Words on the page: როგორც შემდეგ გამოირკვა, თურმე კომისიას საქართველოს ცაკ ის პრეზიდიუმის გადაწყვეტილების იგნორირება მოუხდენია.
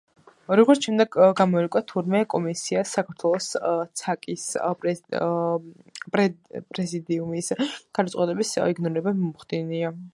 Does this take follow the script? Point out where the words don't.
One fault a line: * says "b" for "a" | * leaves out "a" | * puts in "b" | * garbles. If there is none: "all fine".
all fine